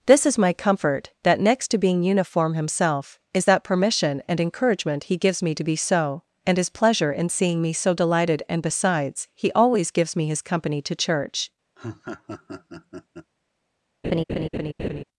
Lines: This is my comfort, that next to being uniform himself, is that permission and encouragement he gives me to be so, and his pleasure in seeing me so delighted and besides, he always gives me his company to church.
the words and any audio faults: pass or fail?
fail